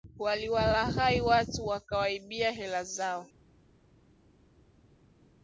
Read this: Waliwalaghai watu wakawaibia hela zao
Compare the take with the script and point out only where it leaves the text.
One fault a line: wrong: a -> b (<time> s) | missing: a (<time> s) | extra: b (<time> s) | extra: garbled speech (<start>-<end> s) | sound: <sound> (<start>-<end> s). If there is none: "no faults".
no faults